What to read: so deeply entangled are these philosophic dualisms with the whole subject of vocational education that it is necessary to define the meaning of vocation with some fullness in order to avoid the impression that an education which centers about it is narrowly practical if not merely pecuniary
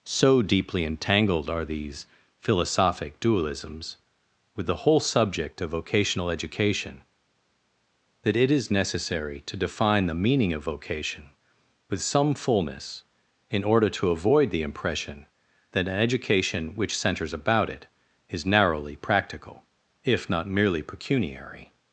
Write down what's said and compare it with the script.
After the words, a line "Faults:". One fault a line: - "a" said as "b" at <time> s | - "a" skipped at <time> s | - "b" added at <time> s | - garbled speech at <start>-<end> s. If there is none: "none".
so deeply entangled are these philosophic dualisms with the whole subject of vocational education that it is necessary to define the meaning of vocation with some fullness in order to avoid the impression that an education which centers about it is narrowly practical if not merely pecuniary
Faults:
none